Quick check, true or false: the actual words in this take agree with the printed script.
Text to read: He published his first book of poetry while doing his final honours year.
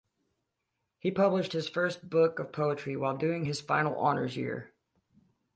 true